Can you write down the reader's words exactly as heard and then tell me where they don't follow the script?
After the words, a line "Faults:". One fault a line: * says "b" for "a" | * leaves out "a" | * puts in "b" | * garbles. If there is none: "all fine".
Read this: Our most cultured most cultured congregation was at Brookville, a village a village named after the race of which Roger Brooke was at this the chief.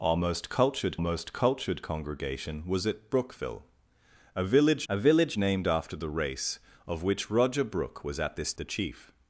Our most cultured most cultured congregation was at Brookville, a village a village named after the race of which Roger Brooke was at this the chief.
Faults:
all fine